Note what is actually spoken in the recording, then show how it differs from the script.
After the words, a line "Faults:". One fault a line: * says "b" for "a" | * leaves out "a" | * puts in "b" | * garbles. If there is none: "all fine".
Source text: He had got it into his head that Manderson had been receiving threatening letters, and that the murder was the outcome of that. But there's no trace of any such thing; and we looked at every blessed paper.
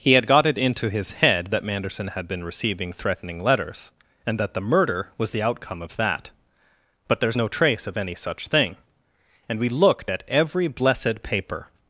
He had got it into his head that Manderson had been receiving threatening letters, and that the murder was the outcome of that. But there's no trace of any such thing; and we looked at every blessed paper.
Faults:
all fine